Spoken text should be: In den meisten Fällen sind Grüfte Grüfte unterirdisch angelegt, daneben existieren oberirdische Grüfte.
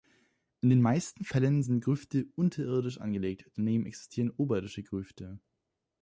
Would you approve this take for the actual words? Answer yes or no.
no